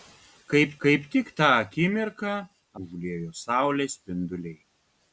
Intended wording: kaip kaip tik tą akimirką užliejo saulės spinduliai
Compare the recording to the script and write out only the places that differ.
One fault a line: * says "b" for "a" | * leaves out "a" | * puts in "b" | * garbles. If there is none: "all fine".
all fine